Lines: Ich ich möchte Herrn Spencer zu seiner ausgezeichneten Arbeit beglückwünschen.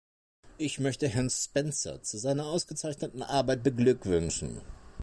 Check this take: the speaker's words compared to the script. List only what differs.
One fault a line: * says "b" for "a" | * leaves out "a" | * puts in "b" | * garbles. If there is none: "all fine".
* leaves out "ich"